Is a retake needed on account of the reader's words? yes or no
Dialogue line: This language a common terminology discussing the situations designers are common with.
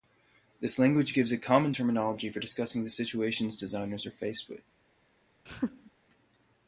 yes